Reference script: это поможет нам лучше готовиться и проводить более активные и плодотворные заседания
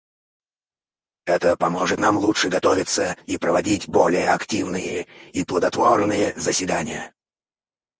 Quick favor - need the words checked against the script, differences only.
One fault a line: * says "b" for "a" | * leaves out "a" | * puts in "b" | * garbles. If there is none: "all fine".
all fine